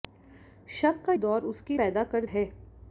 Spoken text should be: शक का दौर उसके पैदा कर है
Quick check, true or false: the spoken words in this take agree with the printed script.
true